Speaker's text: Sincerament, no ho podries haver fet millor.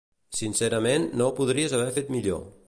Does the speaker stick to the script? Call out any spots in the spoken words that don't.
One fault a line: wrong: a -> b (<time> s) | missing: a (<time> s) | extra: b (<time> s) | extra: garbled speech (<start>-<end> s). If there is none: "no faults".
no faults